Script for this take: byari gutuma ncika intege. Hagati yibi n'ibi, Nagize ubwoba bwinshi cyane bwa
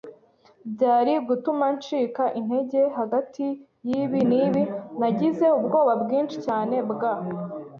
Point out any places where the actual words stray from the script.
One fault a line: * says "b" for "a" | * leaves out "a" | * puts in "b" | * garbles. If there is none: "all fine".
all fine